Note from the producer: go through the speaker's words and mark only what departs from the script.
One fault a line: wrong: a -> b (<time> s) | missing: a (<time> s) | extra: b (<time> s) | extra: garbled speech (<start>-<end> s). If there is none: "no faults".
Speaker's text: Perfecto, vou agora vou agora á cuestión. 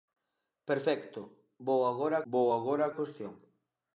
no faults